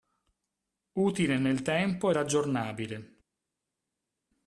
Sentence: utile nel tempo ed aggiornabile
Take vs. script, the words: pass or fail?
pass